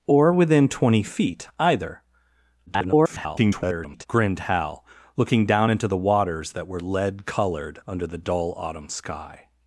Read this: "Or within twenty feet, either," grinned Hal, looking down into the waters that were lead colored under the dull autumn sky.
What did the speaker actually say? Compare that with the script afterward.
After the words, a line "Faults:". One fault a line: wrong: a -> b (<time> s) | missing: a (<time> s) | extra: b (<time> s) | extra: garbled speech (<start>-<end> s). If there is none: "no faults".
"Or within twenty feet, either," [garbled] grinned Hal, looking down into the waters that were lead colored under the dull autumn sky.
Faults:
extra: garbled speech (2.7-4.1 s)